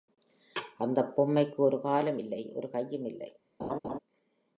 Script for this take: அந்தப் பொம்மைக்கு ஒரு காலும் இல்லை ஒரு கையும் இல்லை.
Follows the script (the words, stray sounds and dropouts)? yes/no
no